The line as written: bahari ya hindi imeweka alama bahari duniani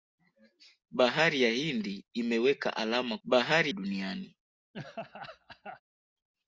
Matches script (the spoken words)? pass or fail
pass